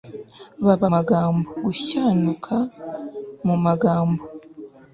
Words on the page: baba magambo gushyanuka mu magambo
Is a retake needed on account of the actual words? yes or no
no